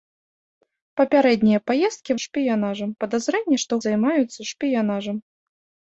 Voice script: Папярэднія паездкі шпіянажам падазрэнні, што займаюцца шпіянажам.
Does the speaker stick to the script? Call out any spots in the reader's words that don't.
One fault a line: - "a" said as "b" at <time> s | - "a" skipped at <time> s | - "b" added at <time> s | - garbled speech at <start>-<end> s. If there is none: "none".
none